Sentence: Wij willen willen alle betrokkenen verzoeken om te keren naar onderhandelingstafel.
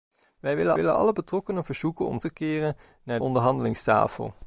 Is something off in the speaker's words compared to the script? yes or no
no